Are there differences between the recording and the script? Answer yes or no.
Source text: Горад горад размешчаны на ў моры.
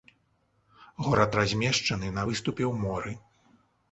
yes